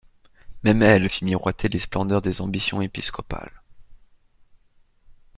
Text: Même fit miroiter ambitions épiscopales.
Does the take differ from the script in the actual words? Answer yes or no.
yes